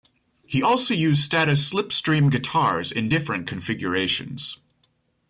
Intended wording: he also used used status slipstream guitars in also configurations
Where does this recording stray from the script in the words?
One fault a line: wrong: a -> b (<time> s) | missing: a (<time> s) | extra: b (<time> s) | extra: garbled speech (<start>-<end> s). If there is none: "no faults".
missing: used (1.2 s)
wrong: also -> different (3.1 s)